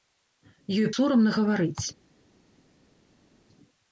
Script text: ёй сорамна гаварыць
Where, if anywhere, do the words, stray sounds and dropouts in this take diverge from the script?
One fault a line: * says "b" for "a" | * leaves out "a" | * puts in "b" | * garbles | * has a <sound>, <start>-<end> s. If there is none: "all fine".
all fine